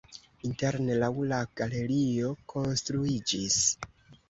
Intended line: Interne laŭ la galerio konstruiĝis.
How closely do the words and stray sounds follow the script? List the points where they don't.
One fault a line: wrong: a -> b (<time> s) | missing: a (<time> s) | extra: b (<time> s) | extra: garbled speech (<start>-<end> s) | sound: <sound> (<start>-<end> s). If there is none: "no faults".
no faults